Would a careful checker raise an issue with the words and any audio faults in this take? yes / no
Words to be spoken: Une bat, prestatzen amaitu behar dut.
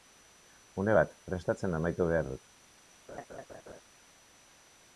yes